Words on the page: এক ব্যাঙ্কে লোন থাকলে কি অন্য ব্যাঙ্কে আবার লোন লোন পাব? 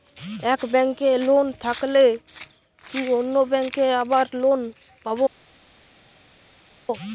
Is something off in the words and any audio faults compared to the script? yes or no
yes